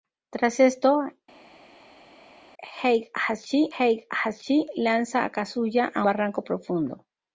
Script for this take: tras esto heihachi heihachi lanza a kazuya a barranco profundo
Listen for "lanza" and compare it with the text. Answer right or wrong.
right